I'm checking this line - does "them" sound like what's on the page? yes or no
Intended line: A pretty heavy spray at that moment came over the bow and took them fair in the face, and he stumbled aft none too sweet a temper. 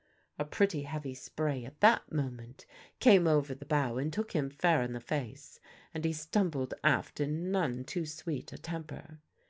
no